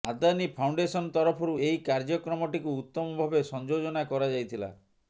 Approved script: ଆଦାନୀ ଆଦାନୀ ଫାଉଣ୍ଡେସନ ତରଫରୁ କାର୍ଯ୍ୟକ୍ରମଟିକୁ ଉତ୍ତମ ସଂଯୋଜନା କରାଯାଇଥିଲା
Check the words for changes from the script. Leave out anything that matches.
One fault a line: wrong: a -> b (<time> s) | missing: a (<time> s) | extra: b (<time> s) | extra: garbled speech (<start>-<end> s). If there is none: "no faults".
missing: ଆଦାନୀ (0.4 s)
extra: ଏହି (1.6 s)
extra: ଭାବେ (3.2 s)